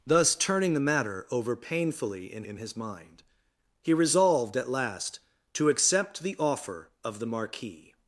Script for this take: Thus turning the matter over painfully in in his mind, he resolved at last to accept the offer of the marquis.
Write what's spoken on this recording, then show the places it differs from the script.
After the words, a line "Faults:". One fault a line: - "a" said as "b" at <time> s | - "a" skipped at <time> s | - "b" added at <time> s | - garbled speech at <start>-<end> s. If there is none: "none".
Thus turning the matter over painfully in in his mind, he resolved at last to accept the offer of the marquis.
Faults:
none